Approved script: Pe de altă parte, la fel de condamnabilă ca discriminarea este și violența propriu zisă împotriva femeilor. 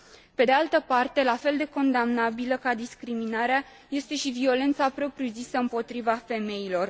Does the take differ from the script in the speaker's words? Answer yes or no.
no